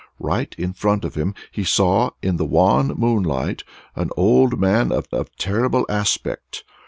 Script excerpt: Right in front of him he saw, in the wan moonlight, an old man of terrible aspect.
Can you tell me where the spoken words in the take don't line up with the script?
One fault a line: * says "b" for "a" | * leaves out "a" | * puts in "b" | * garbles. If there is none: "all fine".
* puts in "of"